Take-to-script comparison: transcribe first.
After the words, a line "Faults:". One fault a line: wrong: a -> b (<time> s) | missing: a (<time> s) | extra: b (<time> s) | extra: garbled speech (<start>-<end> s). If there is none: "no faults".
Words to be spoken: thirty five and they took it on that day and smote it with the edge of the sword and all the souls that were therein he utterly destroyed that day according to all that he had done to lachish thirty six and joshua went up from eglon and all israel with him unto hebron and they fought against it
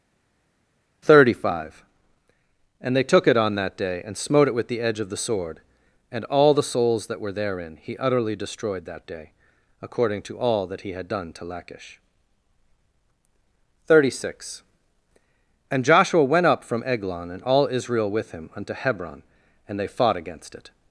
thirty five and they took it on that day and smote it with the edge of the sword and all the souls that were therein he utterly destroyed that day according to all that he had done to lachish thirty six and joshua went up from eglon and all israel with him unto hebron and they fought against it
Faults:
no faults